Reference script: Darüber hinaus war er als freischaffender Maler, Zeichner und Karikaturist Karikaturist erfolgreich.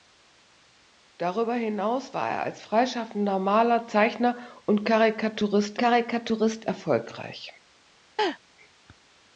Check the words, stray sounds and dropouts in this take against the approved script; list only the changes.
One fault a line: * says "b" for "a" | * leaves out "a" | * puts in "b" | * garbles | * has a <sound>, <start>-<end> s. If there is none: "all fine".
* has a laugh, 8.2-8.4 s